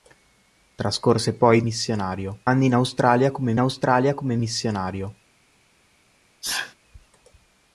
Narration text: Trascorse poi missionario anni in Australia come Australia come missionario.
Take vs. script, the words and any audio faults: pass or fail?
fail